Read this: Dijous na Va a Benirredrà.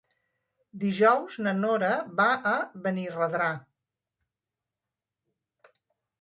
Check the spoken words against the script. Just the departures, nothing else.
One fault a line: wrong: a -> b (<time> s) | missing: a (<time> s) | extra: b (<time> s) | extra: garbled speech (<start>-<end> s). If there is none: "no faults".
extra: Nora (1.6 s)